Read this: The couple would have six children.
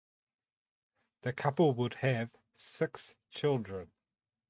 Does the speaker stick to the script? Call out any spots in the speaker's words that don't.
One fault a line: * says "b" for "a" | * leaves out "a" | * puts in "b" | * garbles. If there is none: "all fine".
all fine